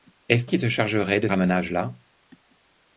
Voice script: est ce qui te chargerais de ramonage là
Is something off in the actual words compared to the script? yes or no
no